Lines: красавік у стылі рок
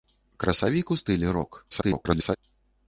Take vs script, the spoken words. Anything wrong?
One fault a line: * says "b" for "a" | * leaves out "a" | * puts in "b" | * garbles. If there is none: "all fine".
* garbles